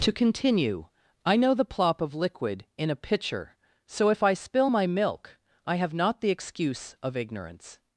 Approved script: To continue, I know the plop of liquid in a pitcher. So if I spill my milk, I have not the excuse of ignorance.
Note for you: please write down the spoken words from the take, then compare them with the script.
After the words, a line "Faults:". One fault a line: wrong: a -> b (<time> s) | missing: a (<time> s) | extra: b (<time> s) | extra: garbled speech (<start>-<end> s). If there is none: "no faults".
To continue, I know the plop of liquid in a pitcher. So if I spill my milk, I have not the excuse of ignorance.
Faults:
no faults